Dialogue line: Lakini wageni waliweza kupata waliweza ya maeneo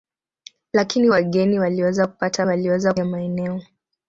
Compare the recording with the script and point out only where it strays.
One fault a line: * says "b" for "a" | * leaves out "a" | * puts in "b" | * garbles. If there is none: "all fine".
all fine